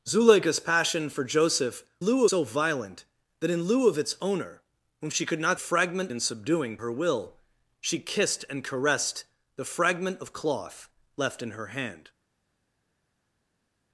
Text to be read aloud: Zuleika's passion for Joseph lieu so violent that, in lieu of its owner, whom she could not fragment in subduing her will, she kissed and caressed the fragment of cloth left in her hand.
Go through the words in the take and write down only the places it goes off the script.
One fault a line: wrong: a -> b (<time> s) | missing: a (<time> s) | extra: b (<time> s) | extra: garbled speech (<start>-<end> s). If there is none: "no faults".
no faults